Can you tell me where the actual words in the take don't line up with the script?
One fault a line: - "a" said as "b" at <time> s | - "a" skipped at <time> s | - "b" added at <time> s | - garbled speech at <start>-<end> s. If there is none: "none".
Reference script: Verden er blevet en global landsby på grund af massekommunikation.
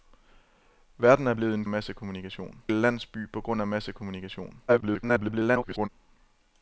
- "global" said as "massekommunikation" at 1.7 s
- garbled speech at 4.7-5.9 s